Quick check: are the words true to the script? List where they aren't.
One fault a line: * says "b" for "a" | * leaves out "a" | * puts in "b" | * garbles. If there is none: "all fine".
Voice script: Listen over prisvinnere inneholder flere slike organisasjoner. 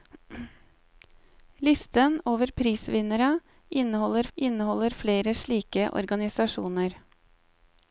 * puts in "inneholder"